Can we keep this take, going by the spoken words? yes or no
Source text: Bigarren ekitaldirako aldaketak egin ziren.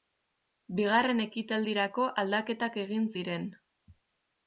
yes